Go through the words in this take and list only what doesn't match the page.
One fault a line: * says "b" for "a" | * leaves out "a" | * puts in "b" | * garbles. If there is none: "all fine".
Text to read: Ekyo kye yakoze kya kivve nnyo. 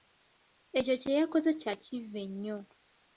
all fine